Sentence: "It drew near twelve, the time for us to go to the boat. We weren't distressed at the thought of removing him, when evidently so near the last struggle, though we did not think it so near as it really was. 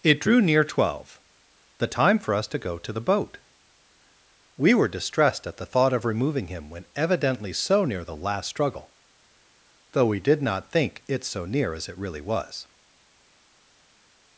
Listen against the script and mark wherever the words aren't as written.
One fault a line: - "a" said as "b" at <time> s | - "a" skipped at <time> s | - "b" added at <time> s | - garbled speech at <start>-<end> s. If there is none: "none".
- "weren't" said as "were" at 4.7 s